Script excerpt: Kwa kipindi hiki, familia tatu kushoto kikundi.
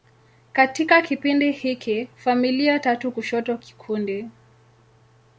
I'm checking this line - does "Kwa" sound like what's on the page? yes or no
no